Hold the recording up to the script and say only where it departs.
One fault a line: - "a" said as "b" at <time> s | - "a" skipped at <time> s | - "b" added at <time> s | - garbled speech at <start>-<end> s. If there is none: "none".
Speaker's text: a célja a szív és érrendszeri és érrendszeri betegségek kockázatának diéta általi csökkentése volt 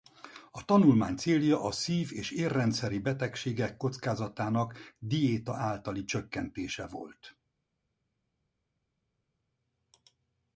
- "tanulmány" added at 0.7 s
- "és érrendszeri" skipped at 3.0 s